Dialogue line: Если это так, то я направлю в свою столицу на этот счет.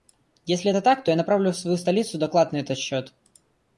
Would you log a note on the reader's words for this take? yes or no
yes